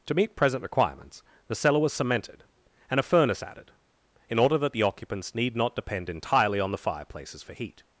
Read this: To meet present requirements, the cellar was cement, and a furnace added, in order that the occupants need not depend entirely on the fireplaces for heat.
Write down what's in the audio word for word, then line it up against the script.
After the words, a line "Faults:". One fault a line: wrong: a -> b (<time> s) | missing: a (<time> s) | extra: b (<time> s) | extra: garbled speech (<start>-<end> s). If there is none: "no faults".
To meet present requirements, the cellar was cemented, and a furnace added, in order that the occupants need not depend entirely on the fireplaces for heat.
Faults:
wrong: cement -> cemented (1.9 s)